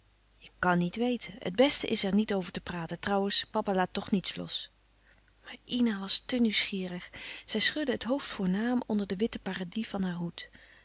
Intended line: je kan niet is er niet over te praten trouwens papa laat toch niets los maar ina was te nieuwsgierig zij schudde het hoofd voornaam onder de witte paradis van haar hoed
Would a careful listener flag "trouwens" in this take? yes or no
no